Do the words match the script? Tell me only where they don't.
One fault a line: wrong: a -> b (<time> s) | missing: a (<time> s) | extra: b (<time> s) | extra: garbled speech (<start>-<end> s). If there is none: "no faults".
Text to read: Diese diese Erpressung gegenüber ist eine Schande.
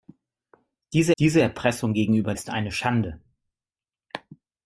no faults